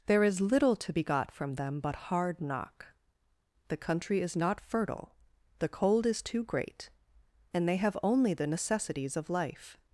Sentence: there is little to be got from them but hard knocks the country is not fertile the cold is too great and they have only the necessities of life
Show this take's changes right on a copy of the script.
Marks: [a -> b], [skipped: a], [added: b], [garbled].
there is little to be got from them but hard [knocks -> knock] the country is not fertile the cold is too great and they have only the necessities of life